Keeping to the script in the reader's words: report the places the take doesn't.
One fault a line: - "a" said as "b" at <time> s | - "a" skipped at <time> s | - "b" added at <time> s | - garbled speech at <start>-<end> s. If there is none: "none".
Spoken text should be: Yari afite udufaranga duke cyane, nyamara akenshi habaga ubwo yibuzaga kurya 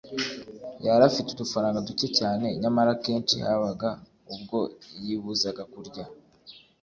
none